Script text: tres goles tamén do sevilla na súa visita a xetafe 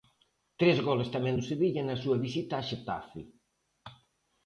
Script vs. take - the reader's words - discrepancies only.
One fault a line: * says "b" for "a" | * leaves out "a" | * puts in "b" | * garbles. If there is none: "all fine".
all fine